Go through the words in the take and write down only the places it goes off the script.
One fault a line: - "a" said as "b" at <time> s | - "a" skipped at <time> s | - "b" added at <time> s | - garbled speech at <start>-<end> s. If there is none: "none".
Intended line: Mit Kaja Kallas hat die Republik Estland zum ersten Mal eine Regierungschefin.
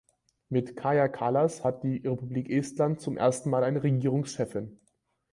none